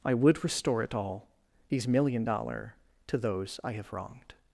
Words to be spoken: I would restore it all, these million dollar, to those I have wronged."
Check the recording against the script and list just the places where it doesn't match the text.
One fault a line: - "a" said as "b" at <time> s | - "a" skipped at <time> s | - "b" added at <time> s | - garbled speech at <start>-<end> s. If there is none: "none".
none